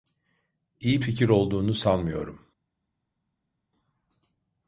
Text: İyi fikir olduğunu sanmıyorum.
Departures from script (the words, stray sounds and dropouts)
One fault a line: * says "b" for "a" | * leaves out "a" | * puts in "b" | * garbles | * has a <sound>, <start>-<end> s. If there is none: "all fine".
all fine